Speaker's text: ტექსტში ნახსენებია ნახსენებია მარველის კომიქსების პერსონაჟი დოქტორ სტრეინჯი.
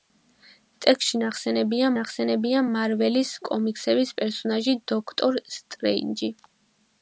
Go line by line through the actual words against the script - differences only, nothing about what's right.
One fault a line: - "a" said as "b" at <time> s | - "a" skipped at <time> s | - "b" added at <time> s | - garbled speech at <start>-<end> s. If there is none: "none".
none